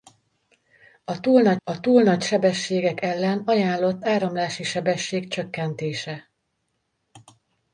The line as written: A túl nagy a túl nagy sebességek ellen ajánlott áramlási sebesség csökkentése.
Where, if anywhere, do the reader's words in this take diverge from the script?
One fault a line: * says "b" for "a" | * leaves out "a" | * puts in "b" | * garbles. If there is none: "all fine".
all fine